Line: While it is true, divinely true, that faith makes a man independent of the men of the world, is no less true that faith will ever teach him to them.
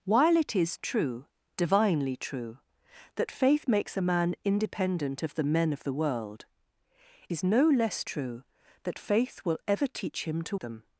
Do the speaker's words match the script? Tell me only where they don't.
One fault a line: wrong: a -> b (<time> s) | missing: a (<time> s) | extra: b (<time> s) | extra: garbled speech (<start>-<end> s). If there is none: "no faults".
no faults